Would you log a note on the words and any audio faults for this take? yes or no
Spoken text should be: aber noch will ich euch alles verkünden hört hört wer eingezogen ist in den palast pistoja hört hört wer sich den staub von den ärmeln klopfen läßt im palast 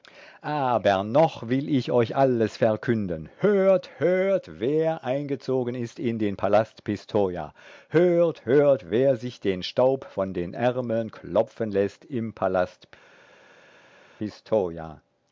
no